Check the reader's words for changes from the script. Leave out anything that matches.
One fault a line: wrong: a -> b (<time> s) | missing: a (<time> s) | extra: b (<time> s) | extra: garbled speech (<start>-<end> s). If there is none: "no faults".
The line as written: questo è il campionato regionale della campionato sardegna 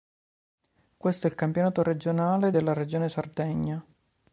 wrong: campionato -> regione (2.7 s)